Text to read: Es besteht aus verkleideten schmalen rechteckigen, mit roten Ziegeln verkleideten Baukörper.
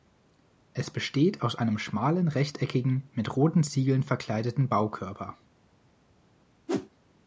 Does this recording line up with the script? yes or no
no